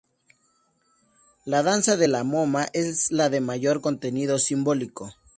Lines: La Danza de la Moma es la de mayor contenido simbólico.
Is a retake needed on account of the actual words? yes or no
no